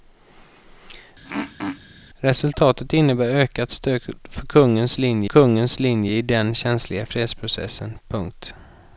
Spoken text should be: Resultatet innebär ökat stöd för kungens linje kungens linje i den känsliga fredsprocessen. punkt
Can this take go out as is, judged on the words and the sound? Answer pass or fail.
fail